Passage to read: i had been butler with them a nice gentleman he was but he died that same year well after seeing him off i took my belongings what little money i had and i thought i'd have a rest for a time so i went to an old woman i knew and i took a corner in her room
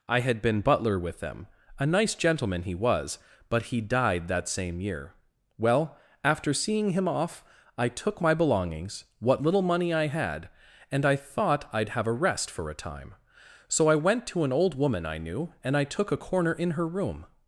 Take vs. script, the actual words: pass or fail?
pass